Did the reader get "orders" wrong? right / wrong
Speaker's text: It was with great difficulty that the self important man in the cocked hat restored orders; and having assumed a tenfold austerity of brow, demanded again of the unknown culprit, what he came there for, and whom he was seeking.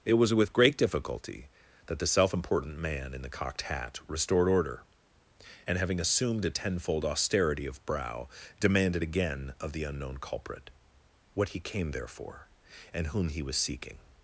wrong